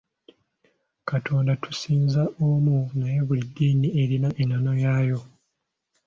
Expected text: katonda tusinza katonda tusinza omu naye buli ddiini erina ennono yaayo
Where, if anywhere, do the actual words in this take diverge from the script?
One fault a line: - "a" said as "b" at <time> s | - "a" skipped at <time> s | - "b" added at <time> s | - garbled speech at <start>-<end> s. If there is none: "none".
- "katonda tusinza" skipped at 2.2 s